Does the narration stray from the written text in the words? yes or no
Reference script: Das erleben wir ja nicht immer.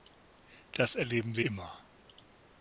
yes